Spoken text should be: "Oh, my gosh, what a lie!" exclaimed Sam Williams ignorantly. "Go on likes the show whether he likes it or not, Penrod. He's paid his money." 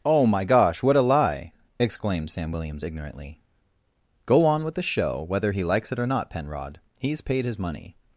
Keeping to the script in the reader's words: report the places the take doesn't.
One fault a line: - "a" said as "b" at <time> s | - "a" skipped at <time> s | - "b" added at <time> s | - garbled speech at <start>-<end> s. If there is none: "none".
- "likes" said as "with" at 4.6 s